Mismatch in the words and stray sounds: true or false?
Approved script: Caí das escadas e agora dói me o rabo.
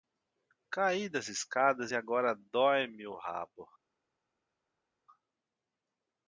false